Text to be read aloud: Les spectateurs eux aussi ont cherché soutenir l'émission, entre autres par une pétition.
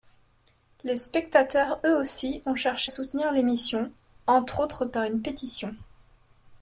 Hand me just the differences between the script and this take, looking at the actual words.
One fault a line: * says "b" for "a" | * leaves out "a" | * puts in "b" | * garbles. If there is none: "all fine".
all fine